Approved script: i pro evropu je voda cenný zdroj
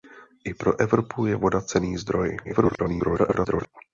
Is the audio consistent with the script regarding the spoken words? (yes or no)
no